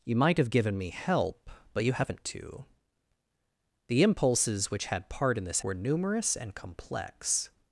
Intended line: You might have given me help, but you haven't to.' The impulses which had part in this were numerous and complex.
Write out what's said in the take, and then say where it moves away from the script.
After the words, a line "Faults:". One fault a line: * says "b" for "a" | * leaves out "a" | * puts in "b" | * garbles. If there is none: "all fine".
You might have given me help, but you haven't to.' The impulses which had part in this were numerous and complex.
Faults:
all fine